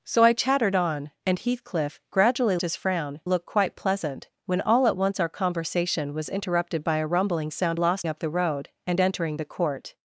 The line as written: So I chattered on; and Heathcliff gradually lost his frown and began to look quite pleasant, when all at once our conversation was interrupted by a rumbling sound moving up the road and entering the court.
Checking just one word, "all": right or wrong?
right